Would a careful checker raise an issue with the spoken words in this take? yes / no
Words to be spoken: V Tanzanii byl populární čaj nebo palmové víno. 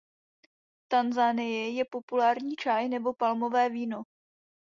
yes